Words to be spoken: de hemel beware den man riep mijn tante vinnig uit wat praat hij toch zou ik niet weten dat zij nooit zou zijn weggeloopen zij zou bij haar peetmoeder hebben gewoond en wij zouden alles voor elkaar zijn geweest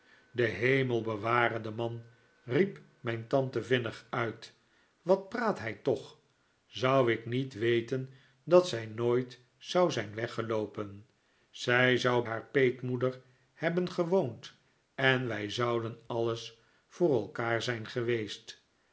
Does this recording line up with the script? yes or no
no